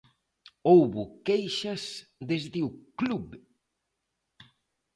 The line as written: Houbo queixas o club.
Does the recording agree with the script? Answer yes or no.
no